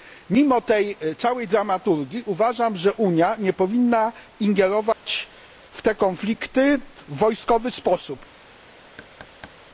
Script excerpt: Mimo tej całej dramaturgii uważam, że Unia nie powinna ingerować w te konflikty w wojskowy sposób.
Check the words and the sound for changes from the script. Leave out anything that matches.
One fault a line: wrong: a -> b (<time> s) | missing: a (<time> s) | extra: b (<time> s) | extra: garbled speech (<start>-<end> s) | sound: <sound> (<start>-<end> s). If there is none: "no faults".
sound: dropout (4.9-5.1 s)
sound: thud (9.0-9.6 s)